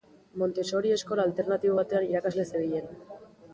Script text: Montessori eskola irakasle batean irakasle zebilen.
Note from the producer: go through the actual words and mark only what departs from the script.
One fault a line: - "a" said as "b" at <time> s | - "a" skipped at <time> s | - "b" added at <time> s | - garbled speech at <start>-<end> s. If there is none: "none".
- "irakasle" said as "alternatibo" at 1.3 s